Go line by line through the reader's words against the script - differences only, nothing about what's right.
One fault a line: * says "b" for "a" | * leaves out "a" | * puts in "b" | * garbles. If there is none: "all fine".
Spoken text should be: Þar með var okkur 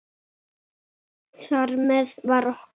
all fine